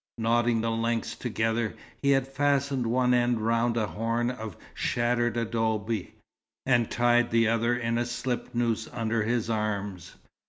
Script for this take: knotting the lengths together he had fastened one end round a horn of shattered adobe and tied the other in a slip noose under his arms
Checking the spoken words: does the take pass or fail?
pass